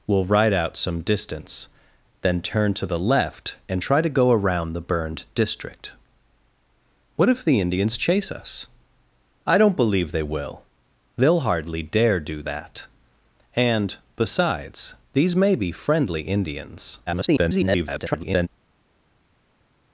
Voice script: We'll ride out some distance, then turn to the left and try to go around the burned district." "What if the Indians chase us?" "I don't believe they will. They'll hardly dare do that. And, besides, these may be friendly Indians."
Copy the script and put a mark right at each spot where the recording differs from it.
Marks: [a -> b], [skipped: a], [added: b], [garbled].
We'll ride out some distance, then turn to the left and try to go around the burned district." "What if the Indians chase us?" "I don't believe they will. They'll hardly dare do that. And, besides, these may be friendly Indians." [garbled]